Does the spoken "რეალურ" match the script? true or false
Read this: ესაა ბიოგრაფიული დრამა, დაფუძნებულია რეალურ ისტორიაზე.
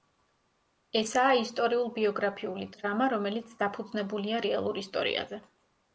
true